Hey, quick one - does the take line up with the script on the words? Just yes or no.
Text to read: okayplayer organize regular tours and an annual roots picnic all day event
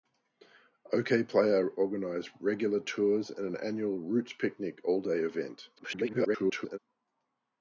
no